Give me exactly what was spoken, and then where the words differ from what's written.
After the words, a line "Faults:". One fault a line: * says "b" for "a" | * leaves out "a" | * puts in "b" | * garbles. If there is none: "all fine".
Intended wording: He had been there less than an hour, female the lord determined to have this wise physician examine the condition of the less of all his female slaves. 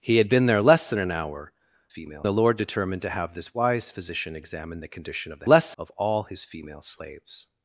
He had been there less than an hour, female the lord determined to have this wise physician examine the condition of the less of all his female slaves.
Faults:
all fine